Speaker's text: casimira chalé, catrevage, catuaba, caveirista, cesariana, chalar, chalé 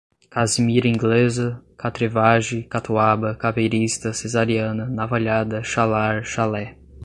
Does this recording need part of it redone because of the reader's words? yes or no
yes